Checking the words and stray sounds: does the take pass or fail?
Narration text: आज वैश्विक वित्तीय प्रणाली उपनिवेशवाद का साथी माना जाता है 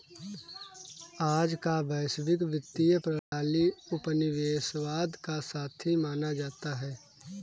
fail